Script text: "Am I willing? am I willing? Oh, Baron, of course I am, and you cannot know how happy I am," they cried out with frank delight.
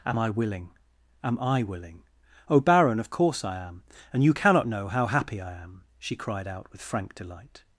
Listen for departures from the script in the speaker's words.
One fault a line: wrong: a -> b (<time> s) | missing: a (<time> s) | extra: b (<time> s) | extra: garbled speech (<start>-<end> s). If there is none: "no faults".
wrong: they -> she (6.0 s)